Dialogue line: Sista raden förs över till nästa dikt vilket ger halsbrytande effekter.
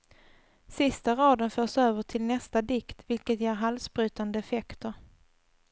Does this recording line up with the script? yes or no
yes